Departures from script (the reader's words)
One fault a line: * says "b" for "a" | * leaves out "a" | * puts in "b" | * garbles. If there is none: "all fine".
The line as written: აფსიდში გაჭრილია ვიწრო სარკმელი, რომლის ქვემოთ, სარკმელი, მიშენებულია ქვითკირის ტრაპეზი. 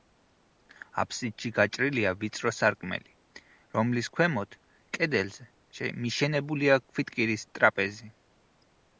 * says "კედელზე" for "სარკმელი"